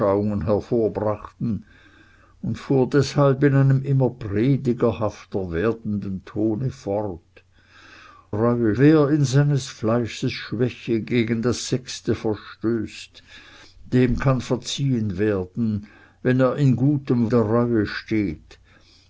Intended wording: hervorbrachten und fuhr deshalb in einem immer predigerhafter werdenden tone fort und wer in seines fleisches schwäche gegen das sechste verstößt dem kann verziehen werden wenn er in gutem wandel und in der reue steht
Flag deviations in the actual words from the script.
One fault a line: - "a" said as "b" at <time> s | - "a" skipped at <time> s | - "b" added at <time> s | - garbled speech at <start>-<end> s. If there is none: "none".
- "und" said as "reue" at 8.3 s
- "wandel und in" skipped at 17.3 s